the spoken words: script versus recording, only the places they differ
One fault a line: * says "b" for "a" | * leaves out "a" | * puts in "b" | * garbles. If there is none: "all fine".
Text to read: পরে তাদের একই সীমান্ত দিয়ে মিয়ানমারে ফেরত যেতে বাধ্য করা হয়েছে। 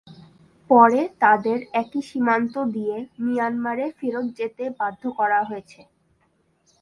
all fine